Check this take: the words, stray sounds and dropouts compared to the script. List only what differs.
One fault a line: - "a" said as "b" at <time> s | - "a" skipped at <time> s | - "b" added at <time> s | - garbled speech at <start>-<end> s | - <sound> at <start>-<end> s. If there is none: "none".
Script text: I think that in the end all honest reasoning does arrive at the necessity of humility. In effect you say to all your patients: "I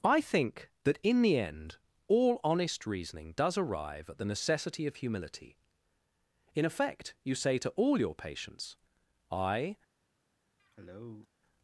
- cough at 10.6-11.3 s